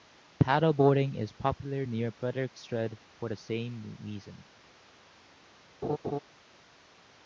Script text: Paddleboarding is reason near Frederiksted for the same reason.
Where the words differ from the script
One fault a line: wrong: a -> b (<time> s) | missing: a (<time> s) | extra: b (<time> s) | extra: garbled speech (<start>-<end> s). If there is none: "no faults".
wrong: reason -> popular (1.3 s)